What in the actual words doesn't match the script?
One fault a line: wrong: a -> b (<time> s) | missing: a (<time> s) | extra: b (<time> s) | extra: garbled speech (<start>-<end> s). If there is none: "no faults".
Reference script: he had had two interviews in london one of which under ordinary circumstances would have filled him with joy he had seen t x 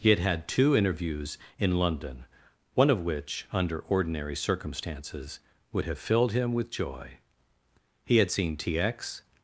no faults